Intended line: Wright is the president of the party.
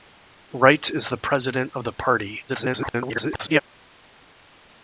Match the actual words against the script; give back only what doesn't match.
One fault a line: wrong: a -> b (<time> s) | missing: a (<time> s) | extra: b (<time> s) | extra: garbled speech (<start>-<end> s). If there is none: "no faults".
extra: garbled speech (2.5-3.6 s)